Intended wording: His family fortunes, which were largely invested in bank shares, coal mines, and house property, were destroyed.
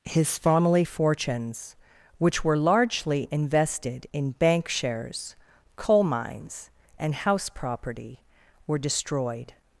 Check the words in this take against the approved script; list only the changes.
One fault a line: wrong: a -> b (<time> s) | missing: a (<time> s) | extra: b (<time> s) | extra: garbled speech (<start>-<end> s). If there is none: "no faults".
no faults